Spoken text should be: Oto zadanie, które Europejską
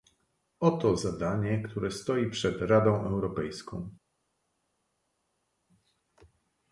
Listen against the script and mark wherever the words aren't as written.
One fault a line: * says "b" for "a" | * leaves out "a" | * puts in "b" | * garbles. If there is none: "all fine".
* puts in "stoi przed Radą"